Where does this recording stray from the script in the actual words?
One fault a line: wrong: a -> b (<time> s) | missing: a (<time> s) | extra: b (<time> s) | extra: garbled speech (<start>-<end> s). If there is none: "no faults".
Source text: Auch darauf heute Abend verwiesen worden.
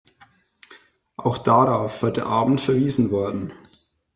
no faults